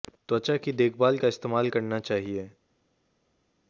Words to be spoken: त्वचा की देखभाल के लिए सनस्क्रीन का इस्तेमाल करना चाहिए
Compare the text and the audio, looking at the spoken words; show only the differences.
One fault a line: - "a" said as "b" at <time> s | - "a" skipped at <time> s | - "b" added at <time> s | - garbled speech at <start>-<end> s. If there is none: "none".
- "के लिए सनस्क्रीन" skipped at 1.2 s